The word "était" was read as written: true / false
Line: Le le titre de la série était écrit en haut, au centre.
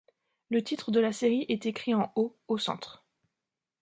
false